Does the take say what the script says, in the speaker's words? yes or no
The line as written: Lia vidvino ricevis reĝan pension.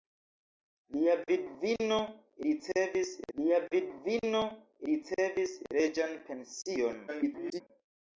no